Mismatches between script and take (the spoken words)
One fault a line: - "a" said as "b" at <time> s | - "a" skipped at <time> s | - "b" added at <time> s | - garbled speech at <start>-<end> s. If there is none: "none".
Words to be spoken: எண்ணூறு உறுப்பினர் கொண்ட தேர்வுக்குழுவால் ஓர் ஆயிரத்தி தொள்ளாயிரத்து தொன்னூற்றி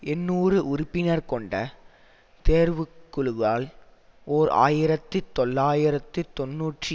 none